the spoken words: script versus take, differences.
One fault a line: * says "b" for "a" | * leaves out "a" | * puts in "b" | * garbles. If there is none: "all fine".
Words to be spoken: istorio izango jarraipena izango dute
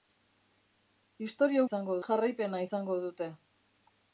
all fine